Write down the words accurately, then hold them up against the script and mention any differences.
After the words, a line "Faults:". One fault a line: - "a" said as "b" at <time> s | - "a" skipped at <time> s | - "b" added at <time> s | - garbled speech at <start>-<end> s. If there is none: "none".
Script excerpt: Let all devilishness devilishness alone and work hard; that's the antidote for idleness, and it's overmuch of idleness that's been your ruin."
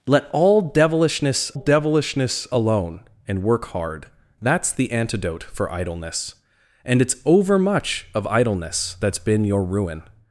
Let all devilishness devilishness alone and work hard; that's the antidote for idleness, and it's overmuch of idleness that's been your ruin."
Faults:
none